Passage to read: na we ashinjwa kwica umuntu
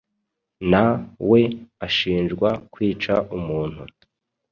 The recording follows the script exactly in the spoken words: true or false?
true